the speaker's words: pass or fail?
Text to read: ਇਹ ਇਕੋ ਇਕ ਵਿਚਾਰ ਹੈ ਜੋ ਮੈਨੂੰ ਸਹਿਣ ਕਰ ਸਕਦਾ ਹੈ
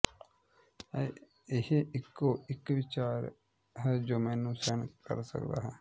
pass